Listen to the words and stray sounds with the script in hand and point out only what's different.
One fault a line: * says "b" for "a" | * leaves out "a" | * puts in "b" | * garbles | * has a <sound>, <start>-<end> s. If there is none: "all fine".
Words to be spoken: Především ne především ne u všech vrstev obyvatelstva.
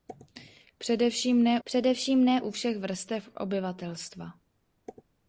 all fine